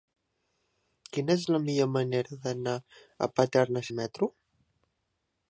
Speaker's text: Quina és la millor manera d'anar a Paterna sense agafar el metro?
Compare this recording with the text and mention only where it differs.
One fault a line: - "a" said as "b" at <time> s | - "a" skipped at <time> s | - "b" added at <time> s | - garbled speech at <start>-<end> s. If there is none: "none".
- "sense agafar" skipped at 3.8 s